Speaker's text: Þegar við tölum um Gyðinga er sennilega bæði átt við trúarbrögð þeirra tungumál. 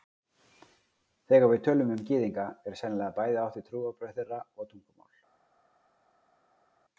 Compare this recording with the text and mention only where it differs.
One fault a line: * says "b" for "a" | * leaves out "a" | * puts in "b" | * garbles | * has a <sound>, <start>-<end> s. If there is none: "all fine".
* puts in "og"